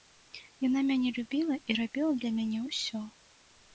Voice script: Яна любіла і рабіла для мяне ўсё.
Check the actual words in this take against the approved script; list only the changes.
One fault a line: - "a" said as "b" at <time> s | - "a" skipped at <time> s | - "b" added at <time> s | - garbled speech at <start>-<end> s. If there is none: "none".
- "мяне" added at 0.9 s